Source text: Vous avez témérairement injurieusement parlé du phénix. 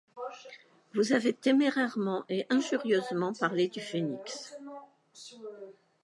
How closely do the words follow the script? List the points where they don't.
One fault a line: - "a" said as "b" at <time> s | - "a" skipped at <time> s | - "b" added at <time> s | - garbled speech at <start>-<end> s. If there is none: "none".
- "et" added at 2.3 s